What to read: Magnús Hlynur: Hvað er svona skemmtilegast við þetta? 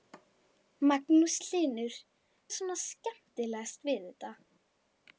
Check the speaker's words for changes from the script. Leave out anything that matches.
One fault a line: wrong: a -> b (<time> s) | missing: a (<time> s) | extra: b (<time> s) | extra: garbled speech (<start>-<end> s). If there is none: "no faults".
missing: Hvað (2.0 s)